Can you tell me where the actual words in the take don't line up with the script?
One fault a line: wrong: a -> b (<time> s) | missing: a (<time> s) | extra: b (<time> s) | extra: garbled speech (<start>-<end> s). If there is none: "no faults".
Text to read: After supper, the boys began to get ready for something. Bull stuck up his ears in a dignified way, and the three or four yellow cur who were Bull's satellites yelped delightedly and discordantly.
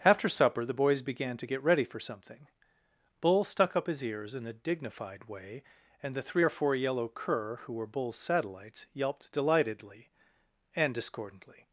no faults